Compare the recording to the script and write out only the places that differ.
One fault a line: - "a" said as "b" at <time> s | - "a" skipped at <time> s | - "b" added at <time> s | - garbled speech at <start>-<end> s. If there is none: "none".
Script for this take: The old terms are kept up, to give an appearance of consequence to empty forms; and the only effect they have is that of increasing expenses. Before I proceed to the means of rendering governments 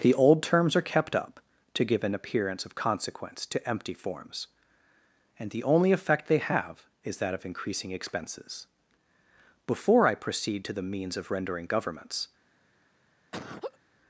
none